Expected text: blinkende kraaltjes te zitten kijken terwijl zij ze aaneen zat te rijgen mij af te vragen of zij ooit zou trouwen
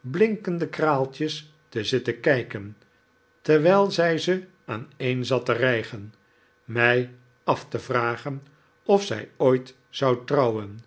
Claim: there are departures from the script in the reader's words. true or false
false